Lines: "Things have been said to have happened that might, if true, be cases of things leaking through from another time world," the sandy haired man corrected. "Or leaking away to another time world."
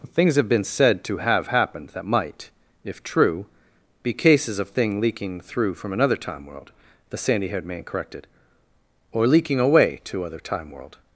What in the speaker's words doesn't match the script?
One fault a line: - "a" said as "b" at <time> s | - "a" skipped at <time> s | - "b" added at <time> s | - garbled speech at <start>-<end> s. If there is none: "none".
- "things" said as "thing" at 4.7 s
- "another" said as "other" at 10.2 s